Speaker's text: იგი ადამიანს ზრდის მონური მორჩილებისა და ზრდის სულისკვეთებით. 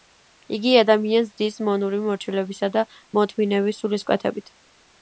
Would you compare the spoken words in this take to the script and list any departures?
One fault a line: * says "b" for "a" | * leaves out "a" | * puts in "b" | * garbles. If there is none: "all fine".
* says "მოთმინების" for "ზრდის"